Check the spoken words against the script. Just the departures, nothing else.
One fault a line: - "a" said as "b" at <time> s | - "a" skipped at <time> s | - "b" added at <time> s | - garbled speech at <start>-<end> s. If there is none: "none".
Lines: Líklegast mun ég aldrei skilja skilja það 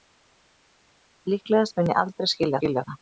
none